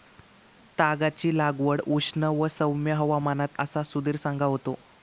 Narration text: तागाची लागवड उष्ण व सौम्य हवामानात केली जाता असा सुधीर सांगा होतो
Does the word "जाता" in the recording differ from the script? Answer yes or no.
yes